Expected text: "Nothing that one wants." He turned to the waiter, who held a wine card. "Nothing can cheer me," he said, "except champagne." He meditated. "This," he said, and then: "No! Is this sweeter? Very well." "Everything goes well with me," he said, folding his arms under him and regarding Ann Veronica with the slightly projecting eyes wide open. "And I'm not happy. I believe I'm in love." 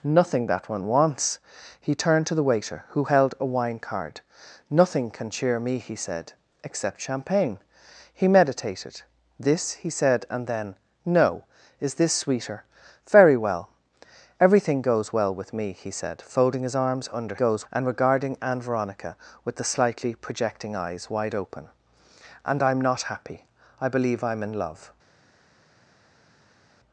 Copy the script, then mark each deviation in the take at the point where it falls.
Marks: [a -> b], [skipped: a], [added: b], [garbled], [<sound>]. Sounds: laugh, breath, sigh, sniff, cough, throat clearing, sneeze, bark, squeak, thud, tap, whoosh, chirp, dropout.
"Nothing that one wants." He turned to the waiter, who held a wine card. "Nothing can cheer me," he said, "except champagne." He meditated. "This," he said, and then: "No! Is this sweeter? Very well." "Everything goes well with me," he said, folding his arms under [him -> goes] and regarding Ann Veronica with the slightly projecting eyes wide open. "And I'm not happy. I believe I'm in love."